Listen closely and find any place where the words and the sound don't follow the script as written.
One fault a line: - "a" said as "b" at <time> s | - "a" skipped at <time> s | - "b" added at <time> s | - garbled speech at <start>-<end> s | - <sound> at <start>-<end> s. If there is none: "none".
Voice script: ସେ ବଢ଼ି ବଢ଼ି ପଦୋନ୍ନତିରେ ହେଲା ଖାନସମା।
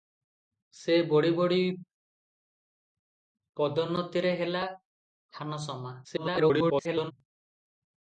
- garbled speech at 6.0-7.1 s